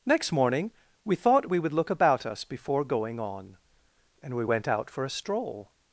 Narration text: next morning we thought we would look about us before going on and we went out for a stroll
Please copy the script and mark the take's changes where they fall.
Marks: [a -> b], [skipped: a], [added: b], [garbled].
next morning we thought we would look about us before going on and we went out for a stroll